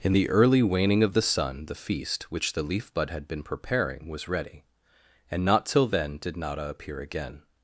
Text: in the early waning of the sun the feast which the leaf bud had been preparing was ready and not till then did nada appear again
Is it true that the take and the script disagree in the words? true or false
false